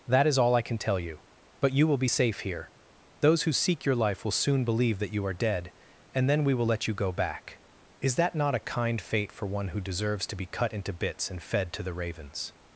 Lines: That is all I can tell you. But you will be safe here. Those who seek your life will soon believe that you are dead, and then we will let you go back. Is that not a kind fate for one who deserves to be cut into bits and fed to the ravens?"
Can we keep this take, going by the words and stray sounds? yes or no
yes